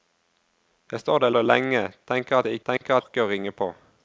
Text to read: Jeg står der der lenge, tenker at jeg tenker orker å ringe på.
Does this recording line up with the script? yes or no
yes